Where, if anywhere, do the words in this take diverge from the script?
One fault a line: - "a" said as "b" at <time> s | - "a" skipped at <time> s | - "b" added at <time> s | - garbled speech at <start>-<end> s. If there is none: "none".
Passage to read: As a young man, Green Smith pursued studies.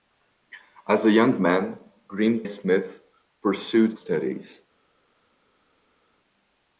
none